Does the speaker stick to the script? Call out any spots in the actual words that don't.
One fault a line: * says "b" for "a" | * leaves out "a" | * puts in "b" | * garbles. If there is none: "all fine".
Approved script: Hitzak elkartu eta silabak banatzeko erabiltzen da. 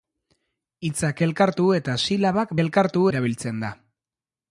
* says "elkartu" for "banatzeko"